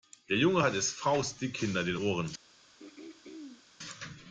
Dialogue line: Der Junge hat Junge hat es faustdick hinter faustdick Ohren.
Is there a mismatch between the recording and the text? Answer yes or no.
yes